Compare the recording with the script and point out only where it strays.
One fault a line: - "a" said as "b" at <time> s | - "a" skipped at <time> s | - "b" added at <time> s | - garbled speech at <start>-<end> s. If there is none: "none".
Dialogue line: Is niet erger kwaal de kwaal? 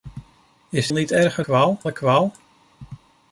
none